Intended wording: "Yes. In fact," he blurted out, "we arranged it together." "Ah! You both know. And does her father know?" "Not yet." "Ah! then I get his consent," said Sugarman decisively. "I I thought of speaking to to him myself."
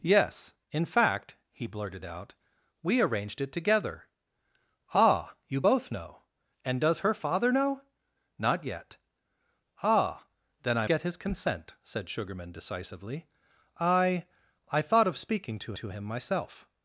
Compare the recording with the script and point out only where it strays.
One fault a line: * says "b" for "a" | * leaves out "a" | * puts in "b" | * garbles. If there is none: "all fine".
all fine